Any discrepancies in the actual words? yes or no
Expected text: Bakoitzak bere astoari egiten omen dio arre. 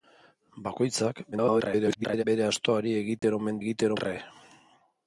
yes